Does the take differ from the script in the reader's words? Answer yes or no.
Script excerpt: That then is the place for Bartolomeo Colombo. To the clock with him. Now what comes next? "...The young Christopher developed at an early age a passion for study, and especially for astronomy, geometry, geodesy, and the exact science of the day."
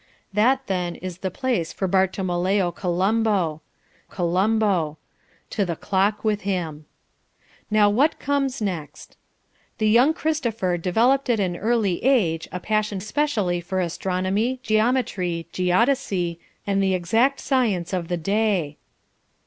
yes